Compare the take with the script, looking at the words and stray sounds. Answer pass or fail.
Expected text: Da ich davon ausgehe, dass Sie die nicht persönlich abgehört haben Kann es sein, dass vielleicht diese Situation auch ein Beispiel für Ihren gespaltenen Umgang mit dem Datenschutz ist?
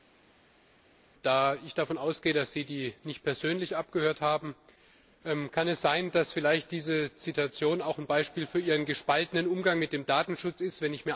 pass